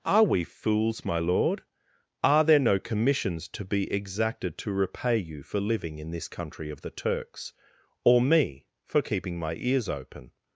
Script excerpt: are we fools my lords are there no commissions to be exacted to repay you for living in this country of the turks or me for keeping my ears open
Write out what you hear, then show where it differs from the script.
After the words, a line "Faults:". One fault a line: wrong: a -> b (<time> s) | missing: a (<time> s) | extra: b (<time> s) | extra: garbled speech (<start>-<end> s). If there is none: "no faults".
are we fools my lord are there no commissions to be exacted to repay you for living in this country of the turks or me for keeping my ears open
Faults:
wrong: lords -> lord (1.2 s)